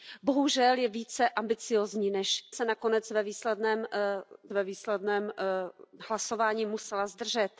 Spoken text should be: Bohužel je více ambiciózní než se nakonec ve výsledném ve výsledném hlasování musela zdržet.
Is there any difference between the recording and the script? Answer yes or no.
no